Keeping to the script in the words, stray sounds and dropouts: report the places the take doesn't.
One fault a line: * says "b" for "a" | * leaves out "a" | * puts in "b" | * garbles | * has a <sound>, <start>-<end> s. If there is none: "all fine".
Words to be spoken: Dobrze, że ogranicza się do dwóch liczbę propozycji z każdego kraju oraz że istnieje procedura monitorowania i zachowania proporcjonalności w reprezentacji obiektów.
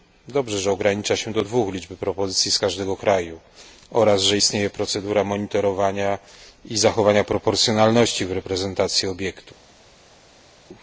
all fine